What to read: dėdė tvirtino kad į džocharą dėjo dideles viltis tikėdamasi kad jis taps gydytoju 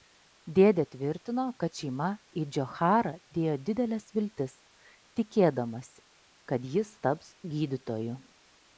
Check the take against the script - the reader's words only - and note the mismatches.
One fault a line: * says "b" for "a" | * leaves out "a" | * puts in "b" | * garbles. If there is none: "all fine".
* puts in "šeima"